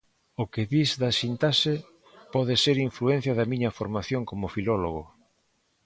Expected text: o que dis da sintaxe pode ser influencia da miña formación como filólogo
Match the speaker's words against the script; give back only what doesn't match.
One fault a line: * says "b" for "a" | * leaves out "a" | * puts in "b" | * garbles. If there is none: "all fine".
all fine